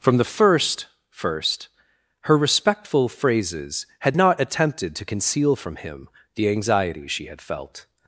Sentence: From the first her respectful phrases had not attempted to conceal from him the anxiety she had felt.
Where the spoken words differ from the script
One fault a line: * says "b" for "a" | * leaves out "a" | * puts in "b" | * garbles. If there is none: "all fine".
* puts in "first"